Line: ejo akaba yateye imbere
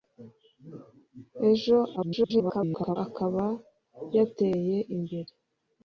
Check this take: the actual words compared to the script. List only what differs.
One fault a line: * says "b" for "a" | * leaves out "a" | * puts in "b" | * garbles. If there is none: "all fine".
* garbles